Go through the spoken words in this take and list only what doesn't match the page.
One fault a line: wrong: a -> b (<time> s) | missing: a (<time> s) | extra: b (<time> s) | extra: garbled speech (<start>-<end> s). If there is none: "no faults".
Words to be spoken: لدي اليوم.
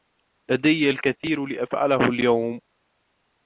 extra: الكثير لأفعله (0.9 s)